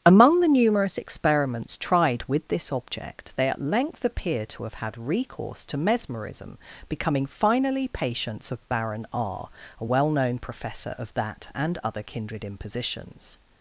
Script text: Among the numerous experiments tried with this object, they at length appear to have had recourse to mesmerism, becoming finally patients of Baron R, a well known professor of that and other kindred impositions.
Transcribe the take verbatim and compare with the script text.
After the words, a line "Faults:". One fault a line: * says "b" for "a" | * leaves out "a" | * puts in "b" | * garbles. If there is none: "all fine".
Among the numerous experiments tried with this object, they at length appear to have had recourse to mesmerism, becoming finally patients of Baron R, a well known professor of that and other kindred impositions.
Faults:
all fine